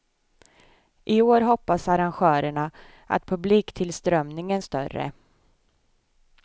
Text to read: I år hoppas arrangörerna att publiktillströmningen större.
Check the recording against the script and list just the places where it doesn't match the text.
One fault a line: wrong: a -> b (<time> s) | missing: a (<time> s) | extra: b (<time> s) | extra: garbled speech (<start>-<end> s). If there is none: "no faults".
no faults